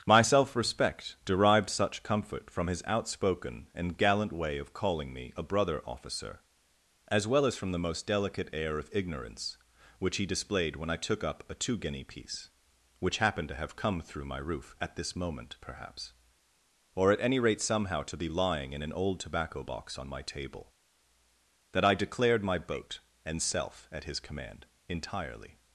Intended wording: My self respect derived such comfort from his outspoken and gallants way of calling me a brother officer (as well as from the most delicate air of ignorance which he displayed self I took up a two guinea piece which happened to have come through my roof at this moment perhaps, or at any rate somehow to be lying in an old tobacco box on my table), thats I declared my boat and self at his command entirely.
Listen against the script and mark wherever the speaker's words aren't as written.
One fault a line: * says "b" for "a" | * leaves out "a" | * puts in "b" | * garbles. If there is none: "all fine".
* says "gallant" for "gallants"
* says "when" for "self"
* says "that" for "thats"